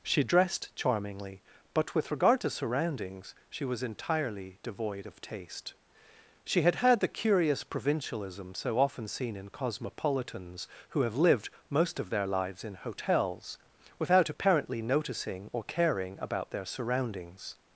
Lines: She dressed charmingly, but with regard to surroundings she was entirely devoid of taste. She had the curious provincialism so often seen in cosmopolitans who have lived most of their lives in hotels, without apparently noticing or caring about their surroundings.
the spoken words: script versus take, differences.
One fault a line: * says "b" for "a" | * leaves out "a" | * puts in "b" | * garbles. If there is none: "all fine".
* puts in "had"